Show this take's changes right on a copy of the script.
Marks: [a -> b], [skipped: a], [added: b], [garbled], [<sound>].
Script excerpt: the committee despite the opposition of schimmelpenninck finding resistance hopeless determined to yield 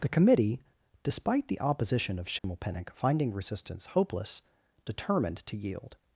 the committee despite the opposition of schimmelpenninck [dropout] finding resistance hopeless determined to yield